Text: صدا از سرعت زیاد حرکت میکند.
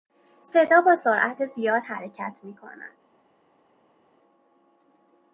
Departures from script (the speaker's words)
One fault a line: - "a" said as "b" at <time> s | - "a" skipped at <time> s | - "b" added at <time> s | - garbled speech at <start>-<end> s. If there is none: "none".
- "از" said as "با" at 0.8 s